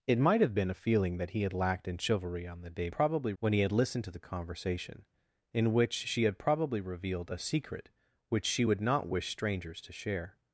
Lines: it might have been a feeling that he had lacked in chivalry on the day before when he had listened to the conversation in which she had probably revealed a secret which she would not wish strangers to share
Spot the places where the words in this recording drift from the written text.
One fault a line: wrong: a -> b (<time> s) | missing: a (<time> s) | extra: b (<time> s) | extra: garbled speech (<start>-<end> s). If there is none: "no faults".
wrong: before -> probably (2.9 s)